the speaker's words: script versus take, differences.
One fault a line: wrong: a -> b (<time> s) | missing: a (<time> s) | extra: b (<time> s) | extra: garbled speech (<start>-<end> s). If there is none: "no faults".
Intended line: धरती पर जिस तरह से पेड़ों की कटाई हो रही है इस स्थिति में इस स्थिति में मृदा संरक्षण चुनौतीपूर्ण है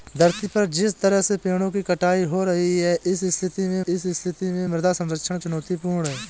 no faults